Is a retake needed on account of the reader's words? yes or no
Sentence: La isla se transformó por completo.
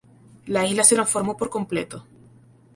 no